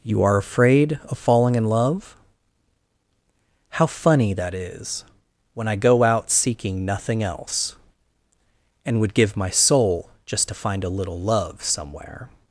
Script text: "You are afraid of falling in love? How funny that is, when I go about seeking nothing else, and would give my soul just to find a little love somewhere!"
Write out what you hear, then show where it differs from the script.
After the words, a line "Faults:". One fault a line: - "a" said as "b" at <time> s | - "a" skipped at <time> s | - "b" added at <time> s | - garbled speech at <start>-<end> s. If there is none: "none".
"You are afraid of falling in love? How funny that is, when I go out seeking nothing else, and would give my soul just to find a little love somewhere!"
Faults:
- "about" said as "out" at 6.0 s